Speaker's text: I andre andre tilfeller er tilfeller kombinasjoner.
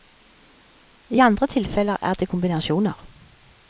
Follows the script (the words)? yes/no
no